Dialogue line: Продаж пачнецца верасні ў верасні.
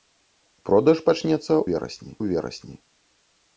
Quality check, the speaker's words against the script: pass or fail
pass